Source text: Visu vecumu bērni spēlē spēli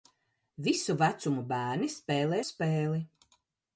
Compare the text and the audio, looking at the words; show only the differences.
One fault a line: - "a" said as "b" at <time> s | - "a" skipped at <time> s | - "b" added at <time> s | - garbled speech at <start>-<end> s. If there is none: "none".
none